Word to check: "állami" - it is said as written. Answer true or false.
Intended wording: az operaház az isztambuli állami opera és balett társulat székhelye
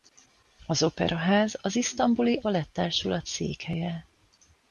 false